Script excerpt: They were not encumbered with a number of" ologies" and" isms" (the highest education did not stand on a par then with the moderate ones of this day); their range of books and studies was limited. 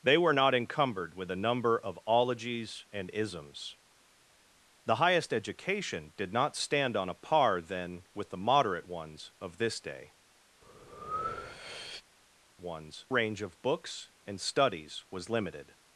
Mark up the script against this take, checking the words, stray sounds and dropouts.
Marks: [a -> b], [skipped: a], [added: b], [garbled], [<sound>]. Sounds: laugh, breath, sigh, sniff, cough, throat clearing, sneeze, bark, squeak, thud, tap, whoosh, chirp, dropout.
They were not encumbered with a number of" ologies" and" isms" (the highest education did not stand on a par then with the moderate ones of this day); [breath] [their -> ones] range of books and studies was limited.